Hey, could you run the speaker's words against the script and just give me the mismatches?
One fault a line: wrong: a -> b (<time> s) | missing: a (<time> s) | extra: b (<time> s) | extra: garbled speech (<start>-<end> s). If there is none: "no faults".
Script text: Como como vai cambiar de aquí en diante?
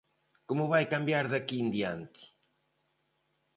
missing: como (0.7 s)